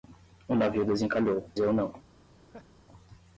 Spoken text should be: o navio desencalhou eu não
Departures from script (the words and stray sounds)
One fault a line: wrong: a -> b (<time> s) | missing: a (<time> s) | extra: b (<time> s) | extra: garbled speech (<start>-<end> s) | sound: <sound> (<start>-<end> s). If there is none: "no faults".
sound: laugh (2.3-2.7 s)